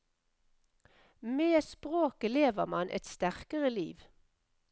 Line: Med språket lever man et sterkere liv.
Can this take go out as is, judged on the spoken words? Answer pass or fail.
pass